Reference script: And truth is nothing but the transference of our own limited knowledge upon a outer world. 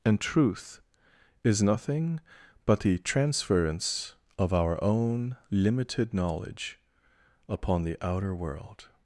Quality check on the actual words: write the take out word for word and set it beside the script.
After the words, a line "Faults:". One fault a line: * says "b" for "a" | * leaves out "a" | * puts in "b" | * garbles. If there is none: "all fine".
And truth is nothing but the transference of our own limited knowledge upon the outer world.
Faults:
* says "the" for "a"